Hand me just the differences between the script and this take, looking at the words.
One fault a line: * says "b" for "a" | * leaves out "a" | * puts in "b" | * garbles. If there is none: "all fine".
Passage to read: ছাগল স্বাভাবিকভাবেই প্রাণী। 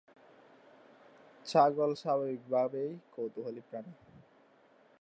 * puts in "কৌতূহলী"